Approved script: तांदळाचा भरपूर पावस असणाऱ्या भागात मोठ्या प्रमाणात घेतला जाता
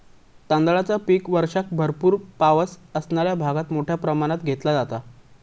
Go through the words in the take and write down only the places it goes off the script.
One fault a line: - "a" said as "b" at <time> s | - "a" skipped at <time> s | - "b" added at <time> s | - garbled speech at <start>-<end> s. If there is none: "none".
- "पीक वर्षाक" added at 1.1 s